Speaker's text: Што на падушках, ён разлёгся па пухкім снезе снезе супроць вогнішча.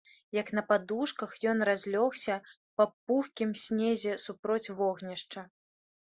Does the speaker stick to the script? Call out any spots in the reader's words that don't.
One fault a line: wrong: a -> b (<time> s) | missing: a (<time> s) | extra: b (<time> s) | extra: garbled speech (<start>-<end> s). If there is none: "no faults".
wrong: Што -> Як (0.3 s)
missing: снезе (4.2 s)